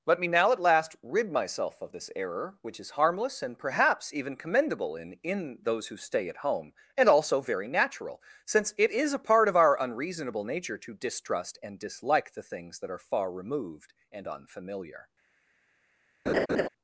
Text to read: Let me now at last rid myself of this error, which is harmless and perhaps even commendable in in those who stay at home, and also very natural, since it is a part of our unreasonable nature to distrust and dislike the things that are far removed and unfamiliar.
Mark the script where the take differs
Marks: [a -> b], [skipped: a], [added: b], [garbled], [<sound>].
Let me now at last rid myself of this error, which is harmless and perhaps even commendable in in those who stay at home, and also very natural, since it is a part of our unreasonable nature to distrust and dislike the things that are far removed and unfamiliar. [laugh]